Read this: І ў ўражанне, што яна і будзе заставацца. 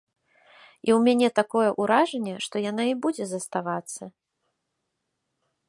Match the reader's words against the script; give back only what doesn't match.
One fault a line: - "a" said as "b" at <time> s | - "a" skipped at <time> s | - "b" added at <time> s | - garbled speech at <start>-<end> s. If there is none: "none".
- "мяне такое" added at 1.1 s